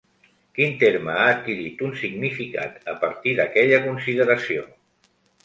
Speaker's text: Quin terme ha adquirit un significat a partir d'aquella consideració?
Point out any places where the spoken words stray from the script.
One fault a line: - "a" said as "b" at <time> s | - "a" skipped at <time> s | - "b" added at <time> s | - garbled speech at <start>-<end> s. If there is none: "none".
none